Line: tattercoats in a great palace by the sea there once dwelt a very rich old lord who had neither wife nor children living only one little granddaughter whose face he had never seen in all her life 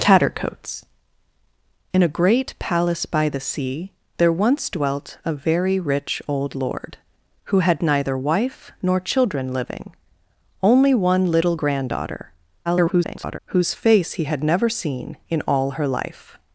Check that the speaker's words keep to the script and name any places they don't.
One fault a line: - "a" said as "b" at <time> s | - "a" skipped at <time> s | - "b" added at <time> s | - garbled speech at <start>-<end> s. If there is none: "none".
- garbled speech at 12.7-13.4 s